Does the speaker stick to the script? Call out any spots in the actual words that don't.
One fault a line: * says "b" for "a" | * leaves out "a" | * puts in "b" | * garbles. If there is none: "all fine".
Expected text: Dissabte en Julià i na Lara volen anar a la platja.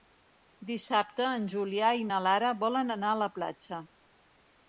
all fine